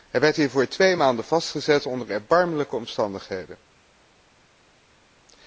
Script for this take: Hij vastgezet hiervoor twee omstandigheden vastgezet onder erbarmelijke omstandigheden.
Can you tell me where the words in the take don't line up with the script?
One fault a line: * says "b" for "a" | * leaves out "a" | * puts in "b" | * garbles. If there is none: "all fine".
* says "werd" for "vastgezet"
* says "maanden" for "omstandigheden"